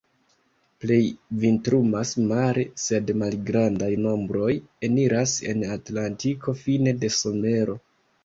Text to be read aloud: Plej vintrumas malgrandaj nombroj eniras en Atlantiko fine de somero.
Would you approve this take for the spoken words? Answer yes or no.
no